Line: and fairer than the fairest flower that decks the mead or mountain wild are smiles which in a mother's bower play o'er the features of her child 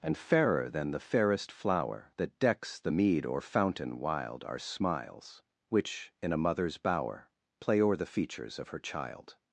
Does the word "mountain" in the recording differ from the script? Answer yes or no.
yes